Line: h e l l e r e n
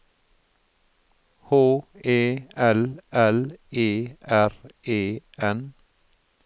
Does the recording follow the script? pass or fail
pass